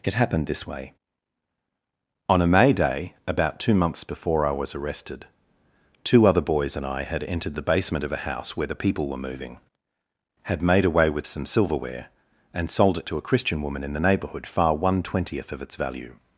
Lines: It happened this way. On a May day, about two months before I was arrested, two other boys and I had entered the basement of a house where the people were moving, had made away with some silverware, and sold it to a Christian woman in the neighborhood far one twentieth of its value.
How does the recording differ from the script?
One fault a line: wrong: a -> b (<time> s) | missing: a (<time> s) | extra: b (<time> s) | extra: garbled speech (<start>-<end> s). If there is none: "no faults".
no faults